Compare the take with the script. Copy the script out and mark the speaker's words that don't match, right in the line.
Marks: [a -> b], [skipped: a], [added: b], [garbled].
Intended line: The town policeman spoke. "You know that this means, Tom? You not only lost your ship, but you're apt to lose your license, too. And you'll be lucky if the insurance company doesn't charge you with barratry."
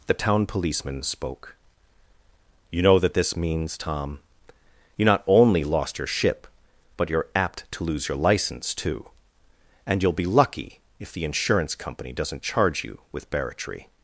The town policeman spoke. "You know that this means, Tom? You not only lost your ship, but you're apt to lose your license, too. And you'll be lucky if the insurance company doesn't charge you with barratry."